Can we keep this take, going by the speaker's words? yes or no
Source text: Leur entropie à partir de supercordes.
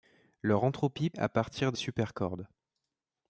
yes